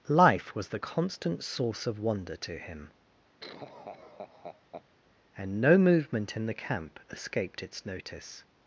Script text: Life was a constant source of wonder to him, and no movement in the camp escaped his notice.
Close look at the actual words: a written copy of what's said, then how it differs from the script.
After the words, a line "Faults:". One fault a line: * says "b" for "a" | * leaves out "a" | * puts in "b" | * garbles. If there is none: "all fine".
Life was the constant source of wonder to him, and no movement in the camp escaped its notice.
Faults:
* says "the" for "a"
* says "its" for "his"